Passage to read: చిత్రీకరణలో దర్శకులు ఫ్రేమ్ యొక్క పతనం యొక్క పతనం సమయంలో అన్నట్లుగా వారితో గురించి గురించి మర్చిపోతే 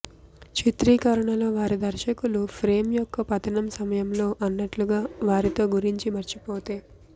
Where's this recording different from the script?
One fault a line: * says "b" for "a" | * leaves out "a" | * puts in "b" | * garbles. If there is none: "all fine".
* puts in "వారి"
* leaves out "యొక్క పతనం"
* leaves out "గురించి"